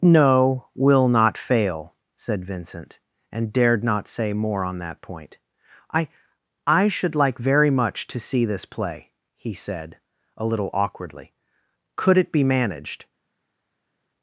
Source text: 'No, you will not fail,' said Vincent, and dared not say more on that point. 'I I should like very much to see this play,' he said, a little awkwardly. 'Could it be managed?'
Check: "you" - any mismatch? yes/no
yes